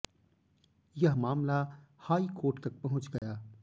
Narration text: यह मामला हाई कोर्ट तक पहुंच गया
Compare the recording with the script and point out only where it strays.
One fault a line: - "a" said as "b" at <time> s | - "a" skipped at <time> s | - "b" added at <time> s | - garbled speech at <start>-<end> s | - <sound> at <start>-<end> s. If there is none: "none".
- dropout at 3.2-3.2 s